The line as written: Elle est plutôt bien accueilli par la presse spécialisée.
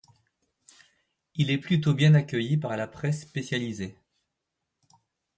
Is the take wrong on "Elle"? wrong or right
wrong